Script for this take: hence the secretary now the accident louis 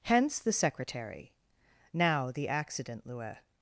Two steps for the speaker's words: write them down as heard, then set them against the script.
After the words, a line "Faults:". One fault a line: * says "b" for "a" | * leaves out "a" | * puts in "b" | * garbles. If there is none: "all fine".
hence the secretary now the accident louis
Faults:
all fine